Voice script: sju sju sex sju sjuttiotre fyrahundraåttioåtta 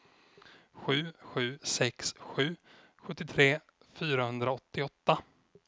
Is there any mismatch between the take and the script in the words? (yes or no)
no